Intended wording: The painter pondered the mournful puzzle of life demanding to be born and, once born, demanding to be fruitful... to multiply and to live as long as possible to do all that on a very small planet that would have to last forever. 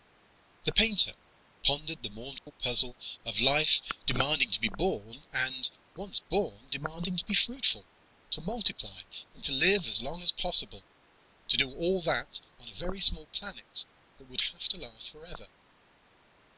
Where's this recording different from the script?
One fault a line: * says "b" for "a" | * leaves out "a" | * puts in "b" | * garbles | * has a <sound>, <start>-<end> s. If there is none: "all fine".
* has a dropout, 2.4-2.5 s